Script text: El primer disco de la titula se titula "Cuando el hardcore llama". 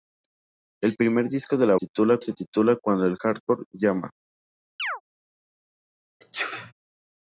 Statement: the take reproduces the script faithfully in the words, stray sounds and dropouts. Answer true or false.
false